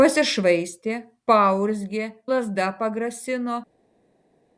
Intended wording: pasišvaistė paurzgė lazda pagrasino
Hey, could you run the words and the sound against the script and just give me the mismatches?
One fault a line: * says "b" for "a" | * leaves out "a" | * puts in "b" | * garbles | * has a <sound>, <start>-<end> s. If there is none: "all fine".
all fine